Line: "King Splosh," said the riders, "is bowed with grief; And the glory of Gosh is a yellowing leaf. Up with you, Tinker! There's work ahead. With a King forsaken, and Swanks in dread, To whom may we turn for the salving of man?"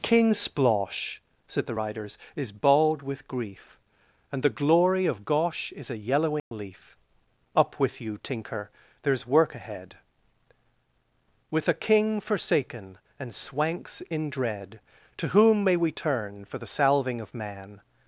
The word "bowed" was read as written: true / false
false